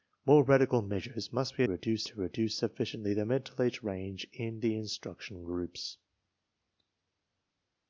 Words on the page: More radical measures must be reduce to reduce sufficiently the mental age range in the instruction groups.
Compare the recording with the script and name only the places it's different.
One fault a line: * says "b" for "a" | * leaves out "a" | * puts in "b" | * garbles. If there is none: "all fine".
all fine